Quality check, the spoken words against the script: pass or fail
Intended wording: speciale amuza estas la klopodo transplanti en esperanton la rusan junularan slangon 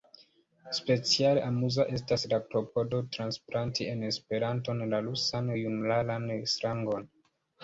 pass